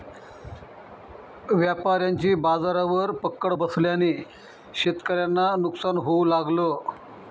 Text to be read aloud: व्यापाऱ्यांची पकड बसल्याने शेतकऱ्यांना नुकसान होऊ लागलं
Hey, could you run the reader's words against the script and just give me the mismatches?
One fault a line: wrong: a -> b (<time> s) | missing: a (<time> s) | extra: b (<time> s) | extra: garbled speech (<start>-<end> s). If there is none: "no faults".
extra: बाजारावर (2.4 s)